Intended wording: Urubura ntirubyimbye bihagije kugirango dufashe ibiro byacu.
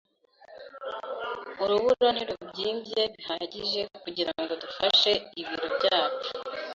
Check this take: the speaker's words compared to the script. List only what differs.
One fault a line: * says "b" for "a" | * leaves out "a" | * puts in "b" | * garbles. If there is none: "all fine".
all fine